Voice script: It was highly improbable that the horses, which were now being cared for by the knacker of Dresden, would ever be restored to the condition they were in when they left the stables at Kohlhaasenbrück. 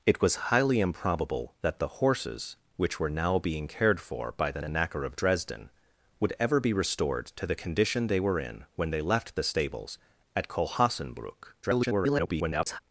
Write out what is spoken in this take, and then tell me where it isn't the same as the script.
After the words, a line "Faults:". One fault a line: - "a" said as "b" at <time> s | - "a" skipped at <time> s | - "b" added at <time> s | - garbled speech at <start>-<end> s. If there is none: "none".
It was highly improbable that the horses, which were now being cared for by the the knacker of Dresden, would ever be restored to the condition they were in when they left the stables at Kohlhaasenbrück. [garbled]
Faults:
- "the" added at 4.6 s
- garbled speech at 11.6-12.8 s